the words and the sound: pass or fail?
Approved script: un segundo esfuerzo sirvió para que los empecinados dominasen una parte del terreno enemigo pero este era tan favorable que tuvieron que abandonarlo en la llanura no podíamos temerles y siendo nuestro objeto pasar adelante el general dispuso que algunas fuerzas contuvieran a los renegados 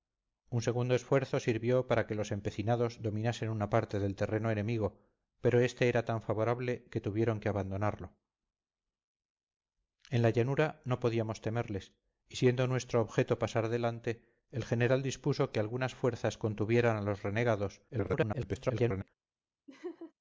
fail